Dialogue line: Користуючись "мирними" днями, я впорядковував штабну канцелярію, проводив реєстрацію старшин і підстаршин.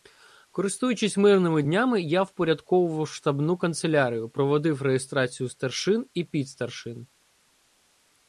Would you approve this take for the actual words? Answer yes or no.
yes